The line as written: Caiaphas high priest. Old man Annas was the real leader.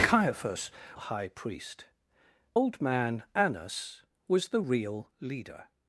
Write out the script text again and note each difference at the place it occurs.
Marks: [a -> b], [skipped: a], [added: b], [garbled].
Caiaphas high priest. Old man Annas was the real leader.